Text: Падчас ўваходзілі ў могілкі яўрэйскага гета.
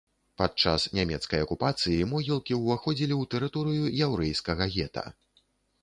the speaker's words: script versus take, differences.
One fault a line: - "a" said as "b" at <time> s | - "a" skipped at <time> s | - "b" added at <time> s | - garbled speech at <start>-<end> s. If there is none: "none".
- "нямецкай акупацыі могілкі" added at 1.0 s
- "могілкі" said as "тэрыторыю" at 3.3 s